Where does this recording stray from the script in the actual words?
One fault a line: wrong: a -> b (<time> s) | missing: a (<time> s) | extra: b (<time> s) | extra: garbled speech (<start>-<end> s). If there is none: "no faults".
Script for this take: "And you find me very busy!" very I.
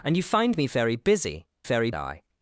no faults